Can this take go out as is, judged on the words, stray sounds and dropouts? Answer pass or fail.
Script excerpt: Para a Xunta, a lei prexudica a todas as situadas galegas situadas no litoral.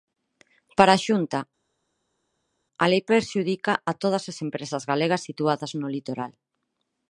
fail